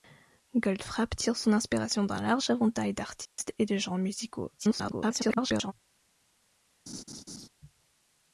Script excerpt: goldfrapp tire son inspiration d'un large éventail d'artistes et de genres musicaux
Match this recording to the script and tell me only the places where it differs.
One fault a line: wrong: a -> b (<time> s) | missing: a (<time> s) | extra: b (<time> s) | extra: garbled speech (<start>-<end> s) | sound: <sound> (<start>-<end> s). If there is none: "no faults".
sound: dropout (3.3-3.4 s)
extra: garbled speech (4.6-5.7 s)
sound: laugh (6.9-7.5 s)